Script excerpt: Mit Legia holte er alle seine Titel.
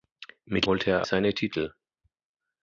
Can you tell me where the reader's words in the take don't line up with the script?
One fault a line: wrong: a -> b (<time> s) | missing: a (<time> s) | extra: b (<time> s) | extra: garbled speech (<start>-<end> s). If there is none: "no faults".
missing: Legia (0.7 s)
missing: alle (1.1 s)